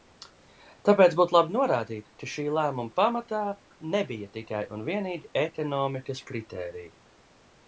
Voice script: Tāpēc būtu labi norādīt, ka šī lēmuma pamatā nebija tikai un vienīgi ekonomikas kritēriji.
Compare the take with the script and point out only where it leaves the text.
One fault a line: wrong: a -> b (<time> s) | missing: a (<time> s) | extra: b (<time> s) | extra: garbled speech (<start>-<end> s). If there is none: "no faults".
no faults